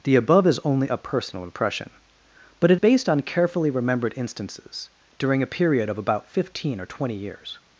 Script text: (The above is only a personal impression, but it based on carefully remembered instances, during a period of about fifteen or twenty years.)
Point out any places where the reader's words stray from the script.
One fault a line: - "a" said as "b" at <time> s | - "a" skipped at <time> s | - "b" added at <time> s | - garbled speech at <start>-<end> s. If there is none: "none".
none